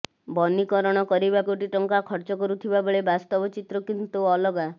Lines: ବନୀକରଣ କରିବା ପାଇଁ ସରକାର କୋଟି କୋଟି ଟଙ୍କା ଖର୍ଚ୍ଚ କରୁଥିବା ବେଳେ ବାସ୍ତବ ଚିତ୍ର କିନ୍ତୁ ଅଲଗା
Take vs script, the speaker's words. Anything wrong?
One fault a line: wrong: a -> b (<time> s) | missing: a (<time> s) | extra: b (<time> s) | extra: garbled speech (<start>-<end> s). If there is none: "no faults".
missing: ପାଇଁ ସରକାର କୋଟି (1.4 s)